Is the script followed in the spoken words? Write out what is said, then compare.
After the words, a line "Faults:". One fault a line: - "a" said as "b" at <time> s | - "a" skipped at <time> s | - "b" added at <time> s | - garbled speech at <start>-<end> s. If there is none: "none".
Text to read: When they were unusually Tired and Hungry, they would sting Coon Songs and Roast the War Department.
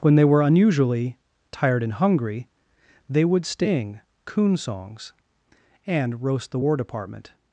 When they were unusually Tired and Hungry, they would sting Coon Songs and Roast the War Department.
Faults:
none